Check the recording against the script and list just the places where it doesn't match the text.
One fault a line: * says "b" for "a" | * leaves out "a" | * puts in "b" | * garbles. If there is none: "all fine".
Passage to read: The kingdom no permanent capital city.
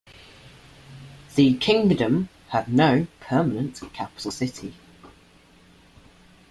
* puts in "had"